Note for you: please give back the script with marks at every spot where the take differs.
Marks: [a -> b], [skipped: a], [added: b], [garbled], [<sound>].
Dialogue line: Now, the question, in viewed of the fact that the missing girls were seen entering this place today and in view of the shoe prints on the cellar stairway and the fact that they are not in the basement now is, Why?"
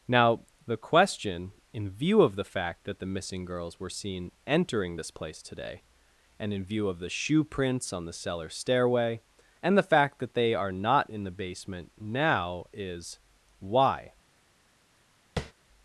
Now, the question, in [viewed -> view] of the fact that the missing girls were seen entering this place today and in view of the shoe prints on the cellar stairway and the fact that they are not in the basement now is, Why?" [tap]